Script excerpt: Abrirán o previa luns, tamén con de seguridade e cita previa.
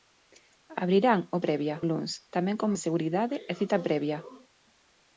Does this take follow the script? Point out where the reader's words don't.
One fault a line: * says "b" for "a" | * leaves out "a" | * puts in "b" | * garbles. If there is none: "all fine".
all fine